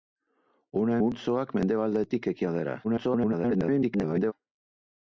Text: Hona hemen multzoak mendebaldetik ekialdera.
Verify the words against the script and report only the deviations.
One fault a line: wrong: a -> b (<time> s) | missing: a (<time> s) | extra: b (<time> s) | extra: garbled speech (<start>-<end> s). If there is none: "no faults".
missing: hemen (0.9 s)
extra: garbled speech (2.8-4.3 s)